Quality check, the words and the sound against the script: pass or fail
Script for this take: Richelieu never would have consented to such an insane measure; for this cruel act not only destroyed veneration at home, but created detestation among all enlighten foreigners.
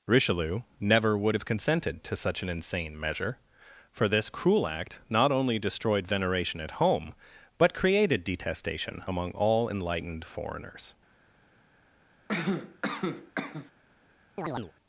fail